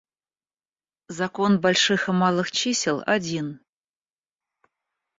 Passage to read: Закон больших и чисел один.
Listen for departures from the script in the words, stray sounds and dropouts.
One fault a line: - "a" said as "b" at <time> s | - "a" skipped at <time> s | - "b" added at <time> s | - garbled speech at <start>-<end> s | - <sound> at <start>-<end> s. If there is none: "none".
- "малых" added at 2.1 s